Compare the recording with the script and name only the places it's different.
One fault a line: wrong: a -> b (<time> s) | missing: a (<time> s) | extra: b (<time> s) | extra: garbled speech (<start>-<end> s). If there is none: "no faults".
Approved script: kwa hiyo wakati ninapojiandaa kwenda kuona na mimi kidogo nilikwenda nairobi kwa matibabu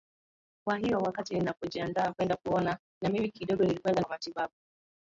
missing: nairobi (4.0 s)